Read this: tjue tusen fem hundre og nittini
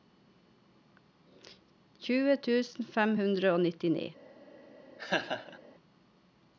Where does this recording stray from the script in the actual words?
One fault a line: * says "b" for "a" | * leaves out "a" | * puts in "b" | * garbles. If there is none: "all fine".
all fine